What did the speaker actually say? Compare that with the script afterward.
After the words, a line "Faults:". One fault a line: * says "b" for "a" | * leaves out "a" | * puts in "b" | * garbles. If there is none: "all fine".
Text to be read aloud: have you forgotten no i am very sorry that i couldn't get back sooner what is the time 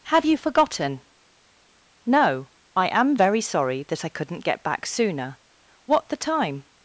have you forgotten no i am very sorry that i couldn't get back sooner what the time
Faults:
* leaves out "is"